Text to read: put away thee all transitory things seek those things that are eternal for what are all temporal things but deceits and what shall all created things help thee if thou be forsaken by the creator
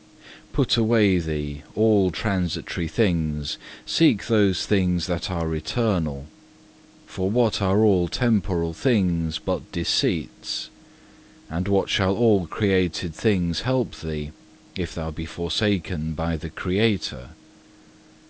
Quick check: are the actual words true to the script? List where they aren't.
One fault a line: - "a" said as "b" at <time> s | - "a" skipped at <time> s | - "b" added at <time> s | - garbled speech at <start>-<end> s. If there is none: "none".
none